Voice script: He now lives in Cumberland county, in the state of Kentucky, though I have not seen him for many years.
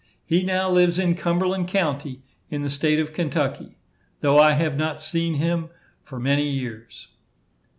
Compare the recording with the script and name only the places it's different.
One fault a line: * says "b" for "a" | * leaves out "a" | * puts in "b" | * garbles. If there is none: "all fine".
all fine